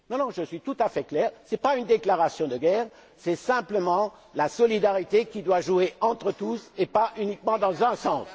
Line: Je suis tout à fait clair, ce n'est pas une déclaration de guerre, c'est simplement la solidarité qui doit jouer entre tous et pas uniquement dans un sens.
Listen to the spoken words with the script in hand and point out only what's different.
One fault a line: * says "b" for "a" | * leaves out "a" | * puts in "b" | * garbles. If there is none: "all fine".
all fine